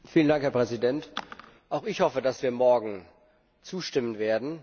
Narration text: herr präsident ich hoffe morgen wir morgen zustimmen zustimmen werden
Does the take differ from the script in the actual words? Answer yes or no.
yes